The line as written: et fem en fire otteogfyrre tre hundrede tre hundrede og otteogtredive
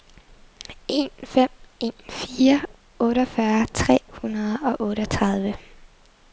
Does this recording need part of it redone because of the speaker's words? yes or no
yes